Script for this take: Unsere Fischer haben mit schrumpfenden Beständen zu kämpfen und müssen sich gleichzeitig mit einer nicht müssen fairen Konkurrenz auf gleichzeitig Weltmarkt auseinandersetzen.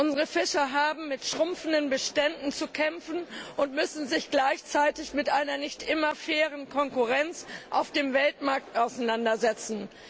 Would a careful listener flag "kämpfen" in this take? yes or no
no